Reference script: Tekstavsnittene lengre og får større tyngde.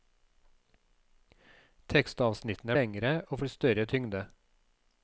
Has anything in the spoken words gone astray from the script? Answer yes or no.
no